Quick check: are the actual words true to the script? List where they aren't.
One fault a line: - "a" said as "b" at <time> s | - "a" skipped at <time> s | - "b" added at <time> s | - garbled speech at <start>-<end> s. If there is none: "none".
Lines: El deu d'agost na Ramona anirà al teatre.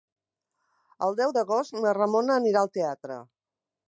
none